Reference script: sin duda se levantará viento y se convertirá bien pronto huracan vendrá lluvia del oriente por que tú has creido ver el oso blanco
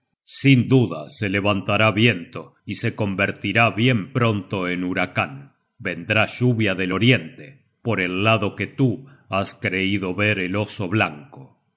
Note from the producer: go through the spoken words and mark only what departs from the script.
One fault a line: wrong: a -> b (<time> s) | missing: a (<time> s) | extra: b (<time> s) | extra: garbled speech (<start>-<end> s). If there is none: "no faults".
extra: en (4.7 s)
extra: el lado (8.0 s)